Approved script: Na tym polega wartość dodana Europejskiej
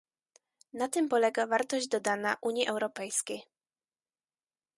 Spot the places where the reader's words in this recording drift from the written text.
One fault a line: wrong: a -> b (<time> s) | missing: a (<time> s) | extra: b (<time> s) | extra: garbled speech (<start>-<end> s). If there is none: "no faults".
extra: Unii (2.4 s)